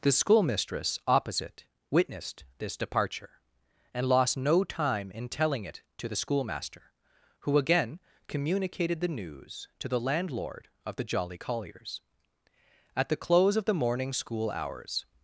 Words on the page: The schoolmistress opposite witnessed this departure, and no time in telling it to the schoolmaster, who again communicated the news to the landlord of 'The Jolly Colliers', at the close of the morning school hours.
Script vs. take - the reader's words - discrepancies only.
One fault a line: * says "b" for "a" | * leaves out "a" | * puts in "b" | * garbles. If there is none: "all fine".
* puts in "lost"